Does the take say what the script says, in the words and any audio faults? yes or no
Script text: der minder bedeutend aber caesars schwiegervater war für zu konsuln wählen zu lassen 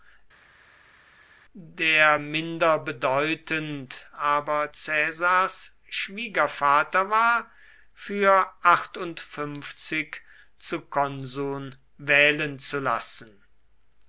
yes